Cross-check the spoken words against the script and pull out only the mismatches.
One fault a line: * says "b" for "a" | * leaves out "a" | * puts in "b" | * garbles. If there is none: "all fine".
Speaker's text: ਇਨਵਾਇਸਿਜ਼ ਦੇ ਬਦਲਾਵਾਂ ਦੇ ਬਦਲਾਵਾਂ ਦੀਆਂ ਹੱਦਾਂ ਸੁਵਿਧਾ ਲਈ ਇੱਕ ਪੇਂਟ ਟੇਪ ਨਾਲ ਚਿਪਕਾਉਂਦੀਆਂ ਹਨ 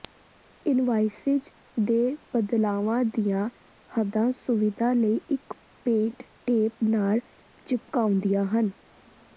* leaves out "ਦੇ ਬਦਲਾਵਾਂ"